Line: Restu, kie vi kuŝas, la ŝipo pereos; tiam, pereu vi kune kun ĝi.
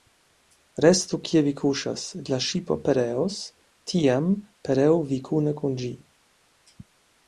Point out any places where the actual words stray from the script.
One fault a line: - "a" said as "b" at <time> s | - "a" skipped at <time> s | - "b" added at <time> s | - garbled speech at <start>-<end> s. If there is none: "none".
none